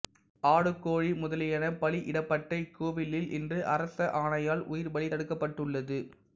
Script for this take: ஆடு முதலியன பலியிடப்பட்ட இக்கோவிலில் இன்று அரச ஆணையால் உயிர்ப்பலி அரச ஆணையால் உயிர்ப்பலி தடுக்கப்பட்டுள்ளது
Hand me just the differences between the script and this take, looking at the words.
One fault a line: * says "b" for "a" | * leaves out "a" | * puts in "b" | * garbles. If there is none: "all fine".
* puts in "கோழி"
* leaves out "அரச ஆணையால் உயிர்ப்பலி"